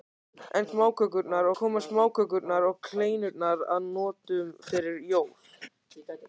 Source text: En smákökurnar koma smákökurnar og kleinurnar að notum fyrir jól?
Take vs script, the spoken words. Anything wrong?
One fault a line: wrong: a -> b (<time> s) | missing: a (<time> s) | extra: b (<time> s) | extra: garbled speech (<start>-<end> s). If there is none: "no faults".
no faults